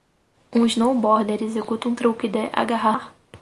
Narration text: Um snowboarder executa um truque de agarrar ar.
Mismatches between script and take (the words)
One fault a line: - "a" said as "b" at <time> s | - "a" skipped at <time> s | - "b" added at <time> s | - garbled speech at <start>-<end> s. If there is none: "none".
none